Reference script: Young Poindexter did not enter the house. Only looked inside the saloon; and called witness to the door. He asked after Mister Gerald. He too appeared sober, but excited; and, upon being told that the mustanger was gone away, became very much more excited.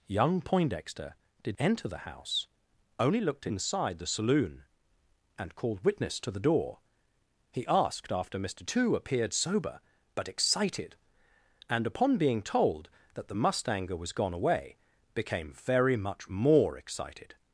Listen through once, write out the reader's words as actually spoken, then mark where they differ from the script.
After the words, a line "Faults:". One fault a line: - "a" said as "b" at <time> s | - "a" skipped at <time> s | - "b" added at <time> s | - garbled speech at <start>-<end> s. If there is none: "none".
Young Poindexter did enter the house. Only looked inside the saloon; and called witness to the door. He asked after Mister Too appeared sober, but excited; and, upon being told that the mustanger was gone away, became very much more excited.
Faults:
- "not" skipped at 1.6 s
- "Gerald He" skipped at 8.6 s